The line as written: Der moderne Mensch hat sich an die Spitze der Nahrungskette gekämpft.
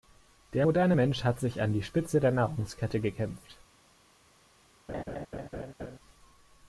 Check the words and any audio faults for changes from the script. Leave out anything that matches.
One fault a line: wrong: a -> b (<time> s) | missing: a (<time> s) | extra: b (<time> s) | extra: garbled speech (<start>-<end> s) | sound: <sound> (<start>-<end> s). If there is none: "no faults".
sound: laugh (4.9-6.0 s)